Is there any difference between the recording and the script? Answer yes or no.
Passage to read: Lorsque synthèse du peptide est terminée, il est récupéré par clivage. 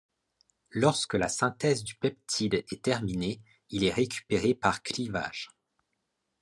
yes